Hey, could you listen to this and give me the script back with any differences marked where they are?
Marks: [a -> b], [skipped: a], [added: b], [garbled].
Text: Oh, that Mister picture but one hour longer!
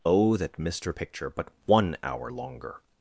Oh, that Mister picture but one hour longer!